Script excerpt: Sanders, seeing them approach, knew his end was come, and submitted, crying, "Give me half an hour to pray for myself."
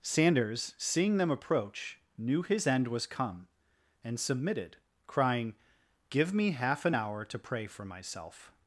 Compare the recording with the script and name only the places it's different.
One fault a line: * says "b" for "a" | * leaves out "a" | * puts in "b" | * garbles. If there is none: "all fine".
all fine